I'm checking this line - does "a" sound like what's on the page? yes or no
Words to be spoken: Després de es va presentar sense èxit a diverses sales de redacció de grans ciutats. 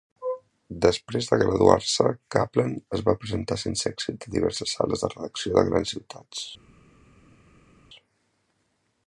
yes